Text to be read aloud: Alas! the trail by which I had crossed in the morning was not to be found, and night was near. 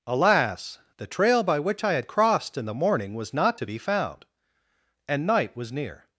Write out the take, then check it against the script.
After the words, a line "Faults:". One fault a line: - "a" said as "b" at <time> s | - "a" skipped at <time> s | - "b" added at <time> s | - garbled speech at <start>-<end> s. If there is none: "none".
Alas! the trail by which I had crossed in the morning was not to be found, and night was near.
Faults:
none